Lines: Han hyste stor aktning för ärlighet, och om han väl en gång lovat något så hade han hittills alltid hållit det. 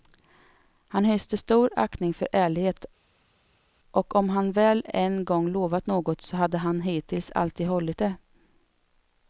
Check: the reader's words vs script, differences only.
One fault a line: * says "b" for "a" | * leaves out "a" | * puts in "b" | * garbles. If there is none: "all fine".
all fine